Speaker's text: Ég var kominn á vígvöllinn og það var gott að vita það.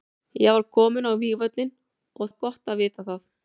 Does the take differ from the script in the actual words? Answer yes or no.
yes